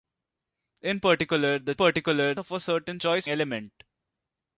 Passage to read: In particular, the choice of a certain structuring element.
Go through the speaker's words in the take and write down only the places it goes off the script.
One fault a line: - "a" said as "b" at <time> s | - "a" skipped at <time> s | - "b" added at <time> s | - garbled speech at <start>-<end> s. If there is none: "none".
- "choice" said as "particular" at 1.7 s
- "structuring" said as "choice" at 3.0 s